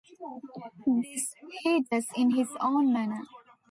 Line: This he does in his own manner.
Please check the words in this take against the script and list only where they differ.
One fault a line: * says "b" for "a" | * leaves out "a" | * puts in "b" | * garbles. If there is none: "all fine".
all fine